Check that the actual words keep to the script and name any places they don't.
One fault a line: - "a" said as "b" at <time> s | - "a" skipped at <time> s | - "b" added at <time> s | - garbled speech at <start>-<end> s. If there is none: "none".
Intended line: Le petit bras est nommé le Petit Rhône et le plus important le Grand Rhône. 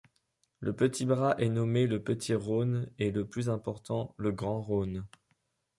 none